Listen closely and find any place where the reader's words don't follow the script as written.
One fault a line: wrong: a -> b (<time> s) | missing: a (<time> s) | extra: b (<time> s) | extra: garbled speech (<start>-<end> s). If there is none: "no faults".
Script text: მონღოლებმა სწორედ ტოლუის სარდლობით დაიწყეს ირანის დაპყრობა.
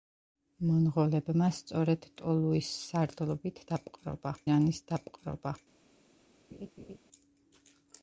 wrong: დაიწყეს -> დაპყრობა (3.7 s)